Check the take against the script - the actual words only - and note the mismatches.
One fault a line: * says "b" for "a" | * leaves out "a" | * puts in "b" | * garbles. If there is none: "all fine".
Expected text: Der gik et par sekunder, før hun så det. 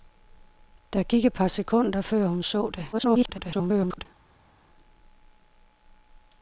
* garbles